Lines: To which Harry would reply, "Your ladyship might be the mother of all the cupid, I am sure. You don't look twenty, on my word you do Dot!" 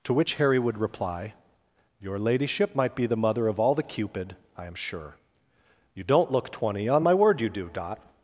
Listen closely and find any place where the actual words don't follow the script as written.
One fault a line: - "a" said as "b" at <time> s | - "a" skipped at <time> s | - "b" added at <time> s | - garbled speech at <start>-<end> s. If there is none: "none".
none